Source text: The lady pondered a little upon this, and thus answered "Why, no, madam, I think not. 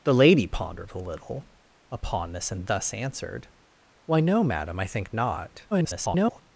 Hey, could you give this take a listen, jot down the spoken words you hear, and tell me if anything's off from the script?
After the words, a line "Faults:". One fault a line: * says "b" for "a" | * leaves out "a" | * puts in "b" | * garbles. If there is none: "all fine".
The lady pondered a little upon this, and thus answered "Why, no, madam, I think not. [garbled]
Faults:
* garbles